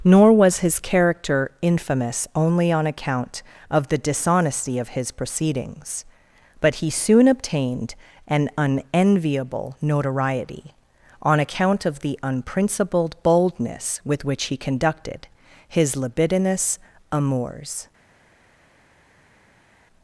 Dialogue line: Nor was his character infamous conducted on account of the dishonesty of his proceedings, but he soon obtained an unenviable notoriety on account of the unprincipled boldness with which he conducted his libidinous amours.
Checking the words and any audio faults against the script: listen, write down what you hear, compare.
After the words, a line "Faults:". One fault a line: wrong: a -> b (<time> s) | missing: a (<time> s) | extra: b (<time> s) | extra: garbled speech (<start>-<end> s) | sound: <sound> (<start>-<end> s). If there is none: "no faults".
Nor was his character infamous only on account of the dishonesty of his proceedings, but he soon obtained an unenviable notoriety on account of the unprincipled boldness with which he conducted his libidinous amours.
Faults:
wrong: conducted -> only (2.4 s)